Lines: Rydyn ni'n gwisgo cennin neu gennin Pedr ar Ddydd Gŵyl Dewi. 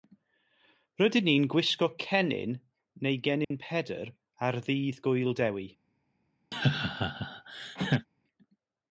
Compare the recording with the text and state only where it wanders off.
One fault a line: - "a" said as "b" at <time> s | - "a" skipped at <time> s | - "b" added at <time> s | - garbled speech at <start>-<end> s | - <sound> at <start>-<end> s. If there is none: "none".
- dropout at 3.4-3.5 s
- laugh at 6.5-8.1 s